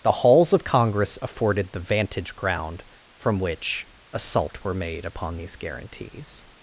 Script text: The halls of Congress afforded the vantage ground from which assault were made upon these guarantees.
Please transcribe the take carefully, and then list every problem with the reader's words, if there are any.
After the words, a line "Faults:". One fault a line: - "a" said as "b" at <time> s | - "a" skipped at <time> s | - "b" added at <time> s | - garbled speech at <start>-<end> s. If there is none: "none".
The halls of Congress afforded the vantage ground from which assault were made upon these guarantees.
Faults:
none